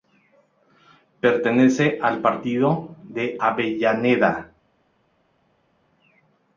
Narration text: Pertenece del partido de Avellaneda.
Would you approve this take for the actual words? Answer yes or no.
no